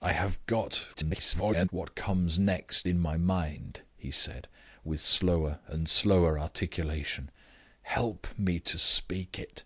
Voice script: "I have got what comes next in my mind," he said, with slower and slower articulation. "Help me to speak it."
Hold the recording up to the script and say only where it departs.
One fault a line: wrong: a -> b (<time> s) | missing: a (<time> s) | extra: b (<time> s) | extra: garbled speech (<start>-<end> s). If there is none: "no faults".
extra: garbled speech (0.9-1.7 s)